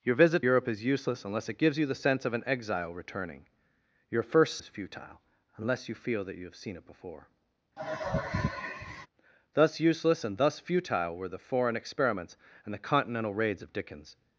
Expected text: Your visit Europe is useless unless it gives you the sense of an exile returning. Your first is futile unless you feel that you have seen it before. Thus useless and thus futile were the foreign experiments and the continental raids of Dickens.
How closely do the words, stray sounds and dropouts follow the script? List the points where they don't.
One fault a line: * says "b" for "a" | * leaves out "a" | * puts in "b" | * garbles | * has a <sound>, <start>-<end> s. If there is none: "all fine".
* has a sigh, 7.8-9.1 s